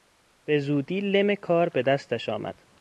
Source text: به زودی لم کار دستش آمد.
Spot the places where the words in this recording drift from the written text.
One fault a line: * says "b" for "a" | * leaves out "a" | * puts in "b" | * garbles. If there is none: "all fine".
* puts in "به"